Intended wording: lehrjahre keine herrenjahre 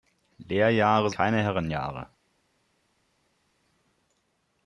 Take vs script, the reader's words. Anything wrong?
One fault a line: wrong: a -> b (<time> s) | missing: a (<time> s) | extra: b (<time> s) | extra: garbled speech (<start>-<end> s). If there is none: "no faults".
no faults